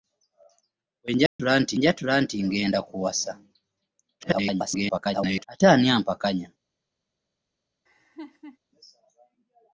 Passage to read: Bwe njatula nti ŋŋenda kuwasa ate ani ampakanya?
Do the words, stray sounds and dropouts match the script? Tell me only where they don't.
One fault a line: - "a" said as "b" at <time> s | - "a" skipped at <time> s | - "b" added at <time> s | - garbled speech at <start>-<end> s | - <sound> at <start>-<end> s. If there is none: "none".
- dropout at 1.3-1.4 s
- "njatula nti" added at 1.8 s
- garbled speech at 4.2-5.4 s
- laugh at 7.9-8.6 s